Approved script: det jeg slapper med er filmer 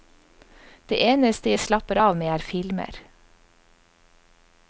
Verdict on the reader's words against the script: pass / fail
fail